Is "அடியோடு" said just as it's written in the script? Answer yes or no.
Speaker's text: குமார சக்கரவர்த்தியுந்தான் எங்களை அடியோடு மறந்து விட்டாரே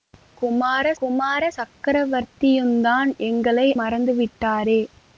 no